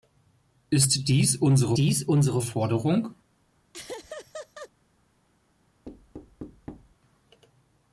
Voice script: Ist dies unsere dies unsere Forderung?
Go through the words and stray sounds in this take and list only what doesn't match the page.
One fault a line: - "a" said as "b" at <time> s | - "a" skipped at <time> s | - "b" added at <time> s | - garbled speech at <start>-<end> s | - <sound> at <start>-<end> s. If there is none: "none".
- laugh at 3.7-4.7 s
- thud at 5.9-7.0 s